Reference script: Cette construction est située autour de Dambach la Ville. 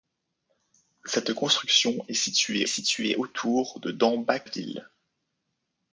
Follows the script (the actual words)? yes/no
no